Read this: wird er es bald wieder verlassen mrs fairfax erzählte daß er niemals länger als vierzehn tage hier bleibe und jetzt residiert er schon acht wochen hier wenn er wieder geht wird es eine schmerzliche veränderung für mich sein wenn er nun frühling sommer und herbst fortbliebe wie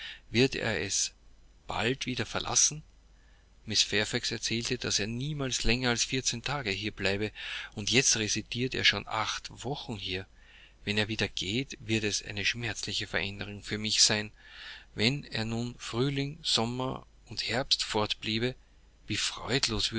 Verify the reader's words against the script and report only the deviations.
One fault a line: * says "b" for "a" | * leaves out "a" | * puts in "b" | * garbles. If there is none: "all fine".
all fine